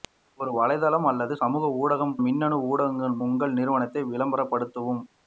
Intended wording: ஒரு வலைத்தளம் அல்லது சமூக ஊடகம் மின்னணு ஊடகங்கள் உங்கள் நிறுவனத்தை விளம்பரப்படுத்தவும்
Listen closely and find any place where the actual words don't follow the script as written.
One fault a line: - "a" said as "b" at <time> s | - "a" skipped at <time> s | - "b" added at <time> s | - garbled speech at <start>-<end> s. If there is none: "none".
none